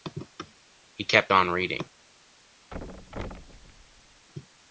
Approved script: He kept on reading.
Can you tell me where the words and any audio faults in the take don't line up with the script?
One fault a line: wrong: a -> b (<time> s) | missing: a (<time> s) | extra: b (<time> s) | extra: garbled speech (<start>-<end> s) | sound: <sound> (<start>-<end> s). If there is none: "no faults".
sound: thud (2.7-4.3 s)